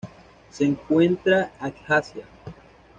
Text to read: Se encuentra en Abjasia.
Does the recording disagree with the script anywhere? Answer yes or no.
yes